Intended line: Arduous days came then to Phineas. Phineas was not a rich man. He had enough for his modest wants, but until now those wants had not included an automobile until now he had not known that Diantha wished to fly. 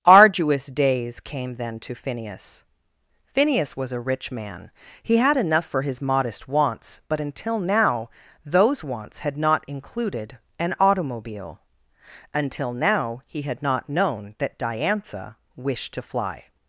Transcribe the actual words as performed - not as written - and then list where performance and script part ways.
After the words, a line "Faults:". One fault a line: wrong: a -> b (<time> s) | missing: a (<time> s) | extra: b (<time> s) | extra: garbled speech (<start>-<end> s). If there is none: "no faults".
Arduous days came then to Phineas. Phineas was a rich man. He had enough for his modest wants, but until now those wants had not included an automobile until now he had not known that Diantha wished to fly.
Faults:
missing: not (3.9 s)